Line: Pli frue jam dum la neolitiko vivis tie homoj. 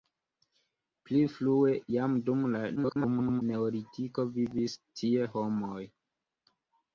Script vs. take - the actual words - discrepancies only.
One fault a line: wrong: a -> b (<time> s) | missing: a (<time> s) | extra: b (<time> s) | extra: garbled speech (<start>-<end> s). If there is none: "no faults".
extra: garbled speech (2.8-3.4 s)